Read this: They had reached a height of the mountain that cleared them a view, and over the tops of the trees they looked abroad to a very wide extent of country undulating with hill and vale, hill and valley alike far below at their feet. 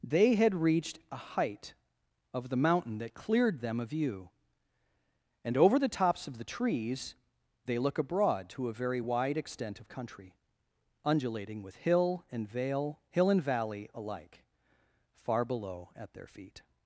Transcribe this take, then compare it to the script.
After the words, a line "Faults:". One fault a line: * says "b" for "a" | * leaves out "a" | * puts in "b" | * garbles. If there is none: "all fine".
They had reached a height of the mountain that cleared them a view, and over the tops of the trees they look abroad to a very wide extent of country undulating with hill and vale, hill and valley alike far below at their feet.
Faults:
* says "look" for "looked"